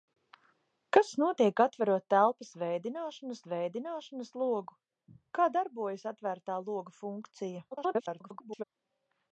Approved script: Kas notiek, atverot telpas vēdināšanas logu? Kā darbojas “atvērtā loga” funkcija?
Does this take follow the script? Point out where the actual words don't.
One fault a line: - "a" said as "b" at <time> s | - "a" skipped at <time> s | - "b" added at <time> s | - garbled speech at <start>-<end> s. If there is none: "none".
- "vēdināšanas" added at 3.5 s
- garbled speech at 7.7-8.6 s